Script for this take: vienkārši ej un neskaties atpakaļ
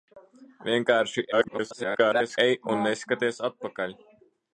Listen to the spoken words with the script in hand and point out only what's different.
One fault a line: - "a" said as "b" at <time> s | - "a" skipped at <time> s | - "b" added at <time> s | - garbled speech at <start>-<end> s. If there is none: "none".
- garbled speech at 1.3-2.4 s